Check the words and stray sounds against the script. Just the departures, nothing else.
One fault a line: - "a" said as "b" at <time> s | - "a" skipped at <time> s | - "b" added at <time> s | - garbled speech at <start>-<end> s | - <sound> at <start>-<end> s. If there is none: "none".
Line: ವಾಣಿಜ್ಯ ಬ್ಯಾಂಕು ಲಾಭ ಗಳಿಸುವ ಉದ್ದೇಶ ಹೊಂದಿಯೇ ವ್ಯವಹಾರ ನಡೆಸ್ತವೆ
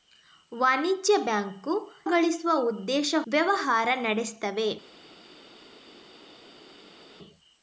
- "ಲಾಭ" skipped at 1.7 s
- "ಹೊಂದಿಯೇ" skipped at 3.1 s